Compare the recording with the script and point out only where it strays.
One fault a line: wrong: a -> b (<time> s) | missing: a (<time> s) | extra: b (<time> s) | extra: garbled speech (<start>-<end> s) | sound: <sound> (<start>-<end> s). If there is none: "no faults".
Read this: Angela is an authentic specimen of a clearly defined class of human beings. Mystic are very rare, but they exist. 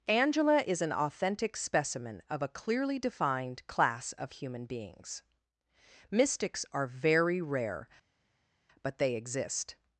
wrong: Mystic -> Mystics (6.1 s)